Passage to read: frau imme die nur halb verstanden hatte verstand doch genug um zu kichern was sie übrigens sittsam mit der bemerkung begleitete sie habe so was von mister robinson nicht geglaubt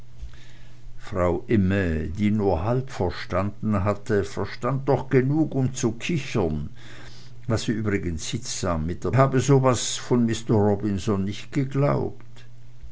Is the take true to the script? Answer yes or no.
no